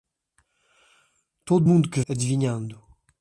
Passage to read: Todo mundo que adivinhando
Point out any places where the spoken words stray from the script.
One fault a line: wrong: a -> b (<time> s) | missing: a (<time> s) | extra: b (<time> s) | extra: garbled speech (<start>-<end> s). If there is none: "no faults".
no faults